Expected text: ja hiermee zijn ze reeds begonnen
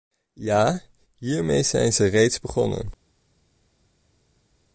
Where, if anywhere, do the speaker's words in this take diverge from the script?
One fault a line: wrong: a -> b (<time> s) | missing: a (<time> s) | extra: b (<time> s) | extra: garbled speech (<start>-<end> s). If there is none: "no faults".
no faults